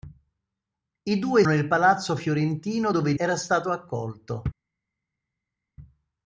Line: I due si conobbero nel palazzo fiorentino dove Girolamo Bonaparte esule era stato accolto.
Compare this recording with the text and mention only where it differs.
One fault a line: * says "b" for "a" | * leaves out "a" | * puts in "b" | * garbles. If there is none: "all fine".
* leaves out "si conobbero"
* leaves out "Girolamo Bonaparte esule"